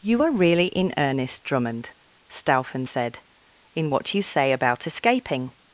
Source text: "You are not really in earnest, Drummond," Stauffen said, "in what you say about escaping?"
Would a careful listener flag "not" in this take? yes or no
yes